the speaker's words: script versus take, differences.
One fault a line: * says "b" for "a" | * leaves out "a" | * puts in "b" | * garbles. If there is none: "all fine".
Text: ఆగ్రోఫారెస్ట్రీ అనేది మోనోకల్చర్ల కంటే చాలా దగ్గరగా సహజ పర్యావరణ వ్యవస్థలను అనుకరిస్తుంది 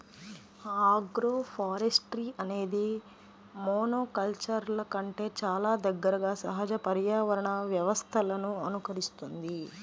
all fine